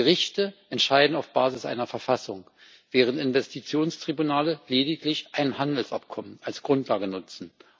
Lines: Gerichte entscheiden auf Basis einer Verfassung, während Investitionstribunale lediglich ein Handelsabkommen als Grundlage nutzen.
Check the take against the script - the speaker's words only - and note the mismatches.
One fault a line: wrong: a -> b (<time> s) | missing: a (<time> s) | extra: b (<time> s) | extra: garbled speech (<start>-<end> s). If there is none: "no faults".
no faults